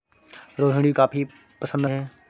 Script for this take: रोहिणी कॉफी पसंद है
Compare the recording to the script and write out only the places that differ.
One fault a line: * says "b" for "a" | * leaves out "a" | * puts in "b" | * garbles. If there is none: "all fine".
all fine